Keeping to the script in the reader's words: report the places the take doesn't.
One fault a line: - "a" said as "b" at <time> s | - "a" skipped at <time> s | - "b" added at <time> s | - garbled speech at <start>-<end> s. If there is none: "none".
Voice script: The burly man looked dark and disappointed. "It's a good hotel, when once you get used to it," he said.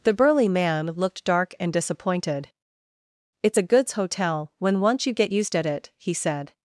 - "good" said as "goods" at 3.6 s
- "to" said as "at" at 5.6 s